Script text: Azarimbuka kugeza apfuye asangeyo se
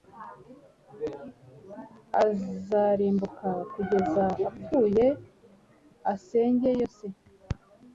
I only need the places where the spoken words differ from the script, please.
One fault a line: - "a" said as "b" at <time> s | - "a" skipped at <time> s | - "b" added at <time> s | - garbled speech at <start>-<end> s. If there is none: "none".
none